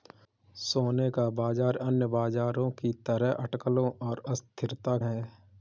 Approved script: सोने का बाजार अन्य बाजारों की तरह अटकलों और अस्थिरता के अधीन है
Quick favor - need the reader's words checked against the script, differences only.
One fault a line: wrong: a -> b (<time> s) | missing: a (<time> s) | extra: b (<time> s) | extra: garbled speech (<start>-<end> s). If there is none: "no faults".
missing: के अधीन (5.0 s)